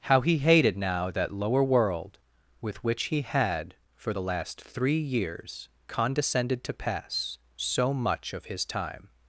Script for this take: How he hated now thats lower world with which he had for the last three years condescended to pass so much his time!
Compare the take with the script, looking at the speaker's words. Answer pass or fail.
fail